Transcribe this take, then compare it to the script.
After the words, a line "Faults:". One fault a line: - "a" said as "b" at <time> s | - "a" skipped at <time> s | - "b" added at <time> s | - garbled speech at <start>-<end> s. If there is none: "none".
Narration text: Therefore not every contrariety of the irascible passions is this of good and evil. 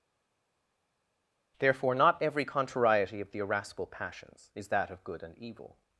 Therefore not every contrariety of the irascible passions is that of good and evil.
Faults:
- "this" said as "that" at 4.7 s